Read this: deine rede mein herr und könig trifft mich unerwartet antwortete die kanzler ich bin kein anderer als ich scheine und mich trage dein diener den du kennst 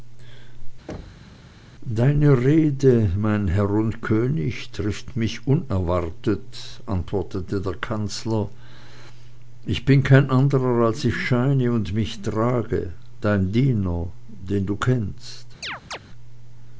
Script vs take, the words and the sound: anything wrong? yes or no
yes